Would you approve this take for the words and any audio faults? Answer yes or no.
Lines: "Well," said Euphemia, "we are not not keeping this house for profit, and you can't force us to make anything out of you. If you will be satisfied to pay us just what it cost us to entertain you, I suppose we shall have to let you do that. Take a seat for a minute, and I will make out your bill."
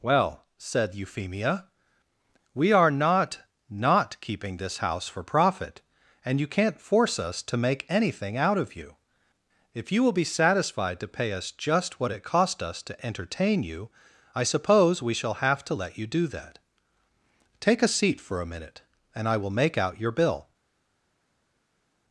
yes